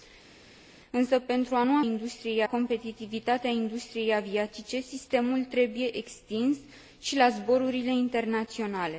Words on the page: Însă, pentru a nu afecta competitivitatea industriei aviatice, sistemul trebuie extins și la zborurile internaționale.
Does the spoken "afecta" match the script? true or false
false